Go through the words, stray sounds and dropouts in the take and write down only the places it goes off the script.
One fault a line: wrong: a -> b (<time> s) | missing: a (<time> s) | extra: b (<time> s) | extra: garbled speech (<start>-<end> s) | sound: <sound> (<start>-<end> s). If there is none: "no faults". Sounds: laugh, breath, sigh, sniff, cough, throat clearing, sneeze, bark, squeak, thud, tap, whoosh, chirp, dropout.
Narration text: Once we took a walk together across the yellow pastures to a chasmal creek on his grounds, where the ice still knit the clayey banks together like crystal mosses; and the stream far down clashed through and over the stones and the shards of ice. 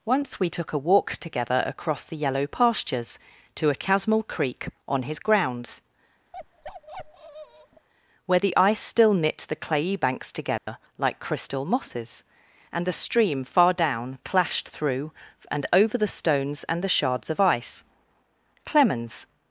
sound: bark (6.3-7.9 s)
sound: dropout (10.6-10.7 s)
extra: Clemens (18.7 s)